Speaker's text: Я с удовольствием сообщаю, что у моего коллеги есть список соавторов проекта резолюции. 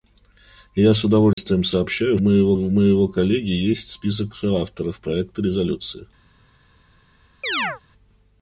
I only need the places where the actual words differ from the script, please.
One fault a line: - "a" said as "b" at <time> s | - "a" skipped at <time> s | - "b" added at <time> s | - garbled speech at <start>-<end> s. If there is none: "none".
- "что" said as "моего" at 2.2 s